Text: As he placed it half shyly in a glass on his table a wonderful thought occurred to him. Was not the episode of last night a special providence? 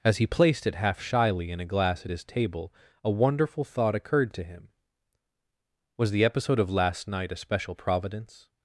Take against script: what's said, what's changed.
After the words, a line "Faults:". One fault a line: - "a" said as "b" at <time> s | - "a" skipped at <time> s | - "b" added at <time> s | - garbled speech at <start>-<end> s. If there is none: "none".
As he placed it half shyly in a glass at his table a wonderful thought occurred to him. Was the episode of last night a special providence?
Faults:
- "on" said as "at" at 2.0 s
- "not" skipped at 6.1 s